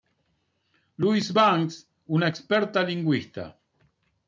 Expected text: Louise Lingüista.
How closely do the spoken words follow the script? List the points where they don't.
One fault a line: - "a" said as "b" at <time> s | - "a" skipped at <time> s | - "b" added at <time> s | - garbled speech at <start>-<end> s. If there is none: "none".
- "Banks una experta" added at 1.3 s